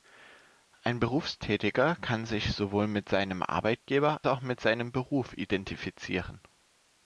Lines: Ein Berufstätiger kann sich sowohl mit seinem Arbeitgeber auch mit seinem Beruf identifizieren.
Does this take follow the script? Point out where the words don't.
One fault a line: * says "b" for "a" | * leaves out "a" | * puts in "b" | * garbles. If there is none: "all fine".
all fine